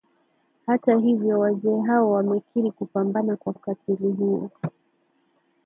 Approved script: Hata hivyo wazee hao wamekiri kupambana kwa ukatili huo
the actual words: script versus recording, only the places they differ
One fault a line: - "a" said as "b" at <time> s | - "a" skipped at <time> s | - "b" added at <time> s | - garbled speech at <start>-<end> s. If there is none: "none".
none